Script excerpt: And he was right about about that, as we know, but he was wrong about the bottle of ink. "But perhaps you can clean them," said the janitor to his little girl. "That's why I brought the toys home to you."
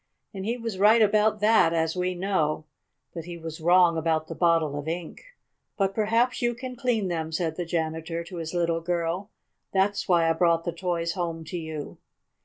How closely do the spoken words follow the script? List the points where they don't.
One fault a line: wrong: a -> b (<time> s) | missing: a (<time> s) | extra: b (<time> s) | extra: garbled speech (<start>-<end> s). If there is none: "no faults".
missing: about (1.4 s)